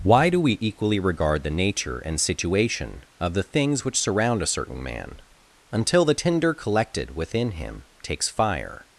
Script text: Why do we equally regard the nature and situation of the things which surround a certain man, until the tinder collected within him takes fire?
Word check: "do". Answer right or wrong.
right